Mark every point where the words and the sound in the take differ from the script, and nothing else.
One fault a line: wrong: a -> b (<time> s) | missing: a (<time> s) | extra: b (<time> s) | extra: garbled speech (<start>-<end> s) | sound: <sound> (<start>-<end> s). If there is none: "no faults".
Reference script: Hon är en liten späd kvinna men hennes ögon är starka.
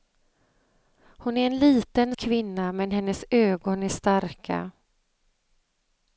missing: späd (2.1 s)